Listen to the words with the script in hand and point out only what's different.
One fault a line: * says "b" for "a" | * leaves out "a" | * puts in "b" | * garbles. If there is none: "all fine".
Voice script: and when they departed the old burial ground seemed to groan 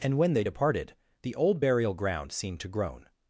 all fine